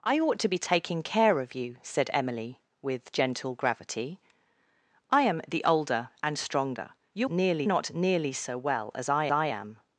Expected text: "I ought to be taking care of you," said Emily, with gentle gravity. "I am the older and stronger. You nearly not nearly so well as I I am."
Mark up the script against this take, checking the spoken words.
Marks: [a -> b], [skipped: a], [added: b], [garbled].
"I ought to be taking care of you," said Emily, with gentle gravity. "I am the older and stronger. You nearly not nearly so well as I I am."